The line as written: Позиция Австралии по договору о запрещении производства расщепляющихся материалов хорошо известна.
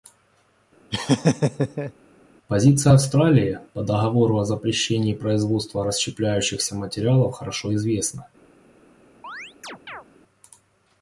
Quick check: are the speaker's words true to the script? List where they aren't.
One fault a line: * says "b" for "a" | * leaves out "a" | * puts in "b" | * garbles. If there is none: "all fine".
all fine